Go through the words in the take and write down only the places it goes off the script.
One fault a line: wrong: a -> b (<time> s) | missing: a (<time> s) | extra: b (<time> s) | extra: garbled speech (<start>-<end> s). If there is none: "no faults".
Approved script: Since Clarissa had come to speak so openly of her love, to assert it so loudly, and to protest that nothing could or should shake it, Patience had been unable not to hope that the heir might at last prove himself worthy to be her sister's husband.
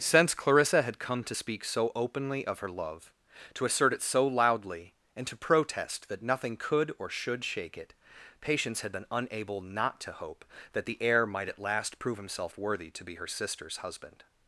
no faults